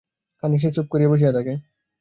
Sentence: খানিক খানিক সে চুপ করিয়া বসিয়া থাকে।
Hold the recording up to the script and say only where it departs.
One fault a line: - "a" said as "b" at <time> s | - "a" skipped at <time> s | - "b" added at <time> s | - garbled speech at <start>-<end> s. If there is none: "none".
- "খানিক" skipped at 0.6 s